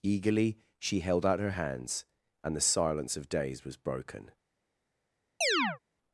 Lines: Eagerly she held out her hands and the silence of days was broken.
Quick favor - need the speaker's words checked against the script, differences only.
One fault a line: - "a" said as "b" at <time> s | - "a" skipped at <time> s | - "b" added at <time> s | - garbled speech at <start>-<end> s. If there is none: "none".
none